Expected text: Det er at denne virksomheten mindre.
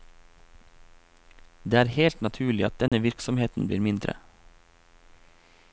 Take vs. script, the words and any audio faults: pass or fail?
fail